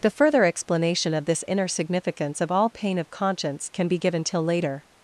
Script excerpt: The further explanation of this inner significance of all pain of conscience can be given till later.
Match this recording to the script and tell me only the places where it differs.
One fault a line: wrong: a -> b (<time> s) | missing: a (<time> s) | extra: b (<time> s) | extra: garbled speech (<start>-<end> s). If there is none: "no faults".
no faults